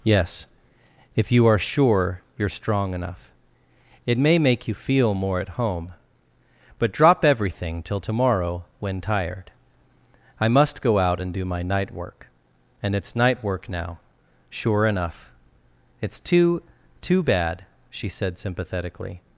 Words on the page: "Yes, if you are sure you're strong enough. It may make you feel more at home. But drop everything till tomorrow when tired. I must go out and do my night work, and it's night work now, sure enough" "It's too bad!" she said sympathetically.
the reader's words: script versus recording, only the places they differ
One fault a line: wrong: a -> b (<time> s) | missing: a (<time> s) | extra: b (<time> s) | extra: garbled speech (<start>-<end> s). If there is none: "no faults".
extra: too (17.0 s)